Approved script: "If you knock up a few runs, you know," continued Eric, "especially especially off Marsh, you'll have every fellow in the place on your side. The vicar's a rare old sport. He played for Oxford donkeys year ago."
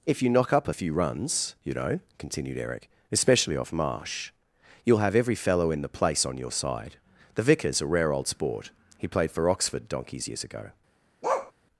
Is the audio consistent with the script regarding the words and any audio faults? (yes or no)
no